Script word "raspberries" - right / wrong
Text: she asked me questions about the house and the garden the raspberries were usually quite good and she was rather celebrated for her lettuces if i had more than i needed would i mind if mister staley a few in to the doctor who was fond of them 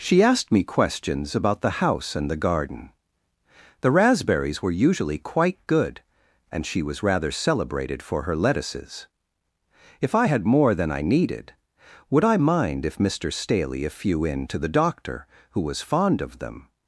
right